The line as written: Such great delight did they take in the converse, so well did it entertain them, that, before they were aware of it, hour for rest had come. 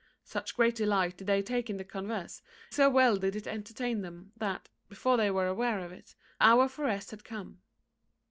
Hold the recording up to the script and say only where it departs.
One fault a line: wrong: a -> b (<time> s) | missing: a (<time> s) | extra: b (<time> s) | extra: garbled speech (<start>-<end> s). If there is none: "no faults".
no faults